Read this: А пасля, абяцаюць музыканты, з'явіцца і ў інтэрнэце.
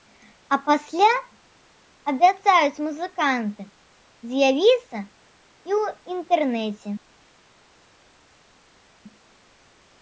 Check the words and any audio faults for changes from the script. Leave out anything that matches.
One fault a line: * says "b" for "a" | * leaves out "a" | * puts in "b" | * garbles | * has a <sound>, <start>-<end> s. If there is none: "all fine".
all fine